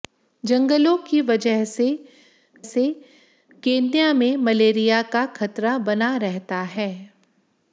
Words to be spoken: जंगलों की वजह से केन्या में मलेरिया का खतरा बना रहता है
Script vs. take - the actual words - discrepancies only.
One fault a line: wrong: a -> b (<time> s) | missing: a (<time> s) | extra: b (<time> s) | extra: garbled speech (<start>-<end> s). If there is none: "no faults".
extra: से (2.6 s)